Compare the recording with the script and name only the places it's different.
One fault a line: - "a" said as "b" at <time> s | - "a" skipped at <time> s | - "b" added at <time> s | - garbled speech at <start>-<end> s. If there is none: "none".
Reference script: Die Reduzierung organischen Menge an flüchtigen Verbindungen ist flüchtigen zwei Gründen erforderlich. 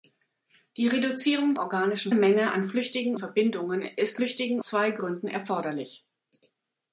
none